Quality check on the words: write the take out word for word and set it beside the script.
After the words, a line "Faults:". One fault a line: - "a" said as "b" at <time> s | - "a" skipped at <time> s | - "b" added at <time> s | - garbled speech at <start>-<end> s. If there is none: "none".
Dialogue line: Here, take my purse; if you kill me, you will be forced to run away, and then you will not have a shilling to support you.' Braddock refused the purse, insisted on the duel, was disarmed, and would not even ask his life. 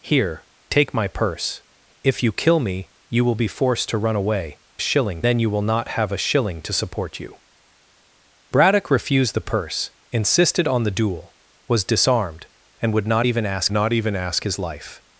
Here, take my purse; if you kill me, you will be forced to run away, shilling then you will not have a shilling to support you.' Braddock refused the purse, insisted on the duel, was disarmed, and would not even ask not even ask his life.
Faults:
- "and" said as "shilling" at 4.8 s
- "not even ask" added at 13.7 s